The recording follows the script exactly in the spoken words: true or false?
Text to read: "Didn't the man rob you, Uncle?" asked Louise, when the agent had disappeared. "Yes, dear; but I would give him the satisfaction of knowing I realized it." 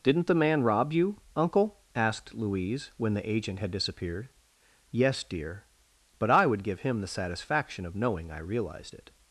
true